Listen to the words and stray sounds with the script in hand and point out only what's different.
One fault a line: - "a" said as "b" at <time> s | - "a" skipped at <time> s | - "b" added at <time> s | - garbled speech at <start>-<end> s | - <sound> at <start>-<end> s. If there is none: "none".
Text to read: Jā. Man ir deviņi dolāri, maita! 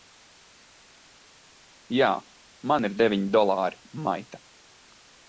none